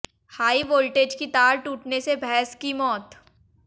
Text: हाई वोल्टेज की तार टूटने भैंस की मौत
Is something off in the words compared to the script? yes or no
yes